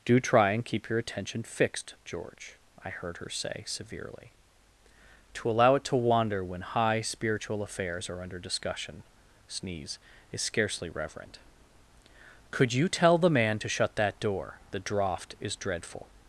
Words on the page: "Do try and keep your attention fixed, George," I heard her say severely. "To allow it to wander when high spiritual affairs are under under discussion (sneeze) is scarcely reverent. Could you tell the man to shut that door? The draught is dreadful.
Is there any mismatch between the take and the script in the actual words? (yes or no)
yes